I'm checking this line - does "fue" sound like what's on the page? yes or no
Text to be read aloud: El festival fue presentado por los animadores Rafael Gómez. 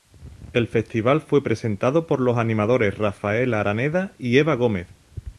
yes